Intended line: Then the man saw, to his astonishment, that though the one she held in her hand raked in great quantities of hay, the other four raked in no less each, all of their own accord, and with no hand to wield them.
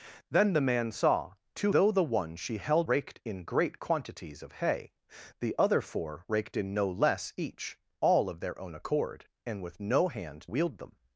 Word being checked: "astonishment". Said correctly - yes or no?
no